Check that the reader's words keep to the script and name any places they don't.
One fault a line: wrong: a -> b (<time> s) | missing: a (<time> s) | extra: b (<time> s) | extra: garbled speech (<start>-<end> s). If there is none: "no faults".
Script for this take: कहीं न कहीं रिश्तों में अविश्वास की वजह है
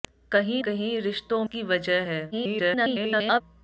missing: न (0.6 s)
missing: में अविश्वास (1.4 s)
extra: garbled speech (2.3-3.4 s)